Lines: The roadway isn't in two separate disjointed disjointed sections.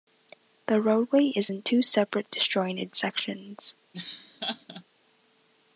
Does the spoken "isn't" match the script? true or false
false